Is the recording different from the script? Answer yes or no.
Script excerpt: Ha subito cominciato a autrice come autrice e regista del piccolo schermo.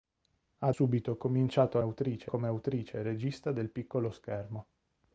no